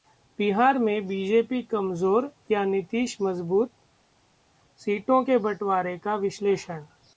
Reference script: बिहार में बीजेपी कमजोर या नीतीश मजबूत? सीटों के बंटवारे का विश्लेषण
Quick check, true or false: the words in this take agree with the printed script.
true